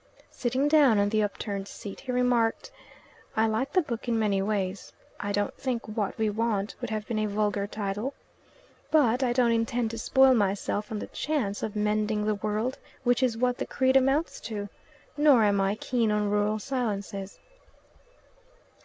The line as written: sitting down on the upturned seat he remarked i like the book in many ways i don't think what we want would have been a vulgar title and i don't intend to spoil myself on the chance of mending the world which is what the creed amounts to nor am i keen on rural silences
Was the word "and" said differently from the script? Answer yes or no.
yes